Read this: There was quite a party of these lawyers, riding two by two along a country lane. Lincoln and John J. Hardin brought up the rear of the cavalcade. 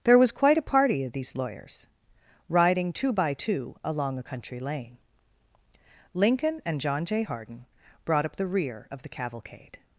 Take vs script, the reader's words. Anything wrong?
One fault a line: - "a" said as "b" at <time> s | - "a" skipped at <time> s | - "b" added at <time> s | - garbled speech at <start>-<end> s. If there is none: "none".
none